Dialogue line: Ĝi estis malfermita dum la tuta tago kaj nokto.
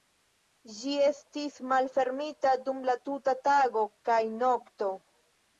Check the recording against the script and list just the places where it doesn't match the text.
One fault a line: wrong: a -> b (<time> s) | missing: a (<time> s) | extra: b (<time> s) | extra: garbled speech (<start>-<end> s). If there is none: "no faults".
no faults